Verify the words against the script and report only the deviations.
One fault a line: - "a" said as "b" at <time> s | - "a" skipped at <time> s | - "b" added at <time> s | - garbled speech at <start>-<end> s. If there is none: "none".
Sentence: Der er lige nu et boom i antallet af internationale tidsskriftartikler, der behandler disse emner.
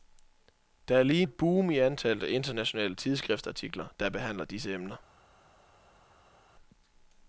- "nu" skipped at 1.2 s